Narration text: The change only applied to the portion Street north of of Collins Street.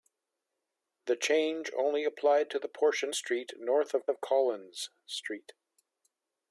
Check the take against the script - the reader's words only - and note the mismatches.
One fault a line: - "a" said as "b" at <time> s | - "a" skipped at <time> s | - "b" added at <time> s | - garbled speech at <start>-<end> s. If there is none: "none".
none